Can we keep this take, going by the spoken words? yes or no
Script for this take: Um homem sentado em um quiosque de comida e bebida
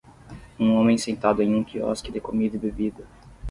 yes